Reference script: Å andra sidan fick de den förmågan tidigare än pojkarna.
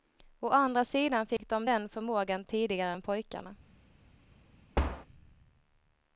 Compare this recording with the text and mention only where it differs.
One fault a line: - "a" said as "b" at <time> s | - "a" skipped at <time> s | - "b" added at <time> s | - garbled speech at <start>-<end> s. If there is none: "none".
none